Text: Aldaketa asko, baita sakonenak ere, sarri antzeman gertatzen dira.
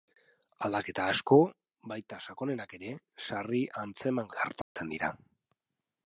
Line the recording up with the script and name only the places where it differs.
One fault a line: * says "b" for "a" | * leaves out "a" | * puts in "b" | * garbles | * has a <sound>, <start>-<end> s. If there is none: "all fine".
* has a dropout, 4.6-4.8 s